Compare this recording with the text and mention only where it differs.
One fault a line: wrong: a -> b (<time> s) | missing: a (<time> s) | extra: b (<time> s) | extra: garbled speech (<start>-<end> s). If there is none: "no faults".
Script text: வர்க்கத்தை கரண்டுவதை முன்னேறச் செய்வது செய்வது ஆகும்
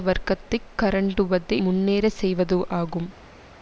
missing: செய்வது (2.6 s)